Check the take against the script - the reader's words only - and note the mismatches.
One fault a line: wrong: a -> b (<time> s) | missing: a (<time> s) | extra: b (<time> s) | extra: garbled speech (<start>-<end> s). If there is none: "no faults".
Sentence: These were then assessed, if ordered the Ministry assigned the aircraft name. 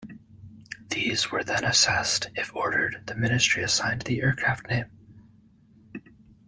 no faults